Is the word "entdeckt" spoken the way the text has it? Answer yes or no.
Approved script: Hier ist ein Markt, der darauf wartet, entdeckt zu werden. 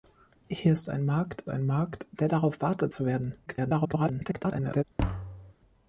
no